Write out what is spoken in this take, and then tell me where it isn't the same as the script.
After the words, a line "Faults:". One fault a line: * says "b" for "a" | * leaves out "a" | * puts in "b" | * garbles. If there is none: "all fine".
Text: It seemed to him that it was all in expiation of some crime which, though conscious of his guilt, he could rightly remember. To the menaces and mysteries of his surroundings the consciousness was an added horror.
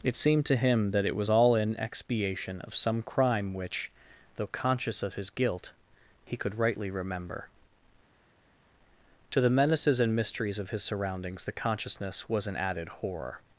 It seemed to him that it was all in expiation of some crime which, though conscious of his guilt, he could rightly remember. To the menaces and mysteries of his surroundings the consciousness was an added horror.
Faults:
all fine